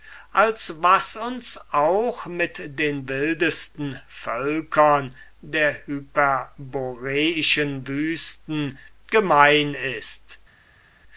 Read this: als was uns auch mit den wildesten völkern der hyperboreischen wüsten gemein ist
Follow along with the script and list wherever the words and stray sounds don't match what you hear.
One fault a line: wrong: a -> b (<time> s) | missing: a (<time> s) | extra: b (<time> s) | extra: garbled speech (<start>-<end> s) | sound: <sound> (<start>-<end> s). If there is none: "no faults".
no faults